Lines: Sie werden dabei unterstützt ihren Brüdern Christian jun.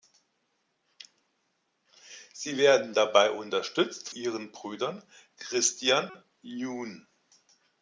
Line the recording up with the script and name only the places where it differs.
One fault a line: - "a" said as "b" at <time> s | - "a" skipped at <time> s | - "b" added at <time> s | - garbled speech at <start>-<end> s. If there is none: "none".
none